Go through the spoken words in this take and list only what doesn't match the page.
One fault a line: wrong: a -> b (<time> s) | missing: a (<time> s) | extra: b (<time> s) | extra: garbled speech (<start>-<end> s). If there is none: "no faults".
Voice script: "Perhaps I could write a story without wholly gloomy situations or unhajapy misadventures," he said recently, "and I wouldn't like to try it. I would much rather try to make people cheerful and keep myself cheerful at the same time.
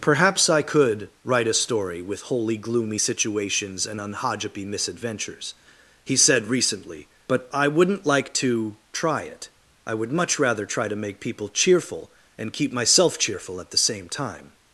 wrong: without -> with (2.0 s)
wrong: or -> and (3.8 s)
wrong: and -> but (7.3 s)